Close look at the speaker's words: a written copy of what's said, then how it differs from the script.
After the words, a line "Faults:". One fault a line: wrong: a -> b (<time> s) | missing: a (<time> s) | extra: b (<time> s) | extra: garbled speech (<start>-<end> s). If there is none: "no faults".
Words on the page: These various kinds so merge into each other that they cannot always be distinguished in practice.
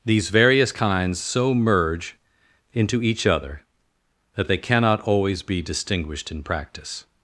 These various kinds so merge into each other that they cannot always be distinguished in practice.
Faults:
no faults